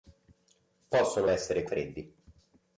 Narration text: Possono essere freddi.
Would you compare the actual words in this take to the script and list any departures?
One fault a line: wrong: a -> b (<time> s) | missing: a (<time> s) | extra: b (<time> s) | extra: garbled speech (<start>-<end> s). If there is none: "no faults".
no faults